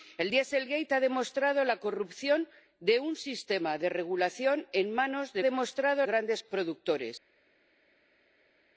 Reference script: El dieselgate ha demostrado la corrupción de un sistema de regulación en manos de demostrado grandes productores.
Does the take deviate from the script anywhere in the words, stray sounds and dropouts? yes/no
no